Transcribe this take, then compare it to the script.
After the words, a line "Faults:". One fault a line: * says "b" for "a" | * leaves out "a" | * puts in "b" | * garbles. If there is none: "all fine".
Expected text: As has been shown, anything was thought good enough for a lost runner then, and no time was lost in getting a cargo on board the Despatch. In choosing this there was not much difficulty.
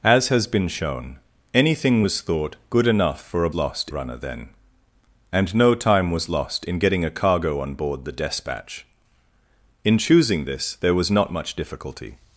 As has been shown, anything was thought good enough for a lost runner then, and no time was lost in getting a cargo on board the Despatch. In choosing this there was not much difficulty.
Faults:
all fine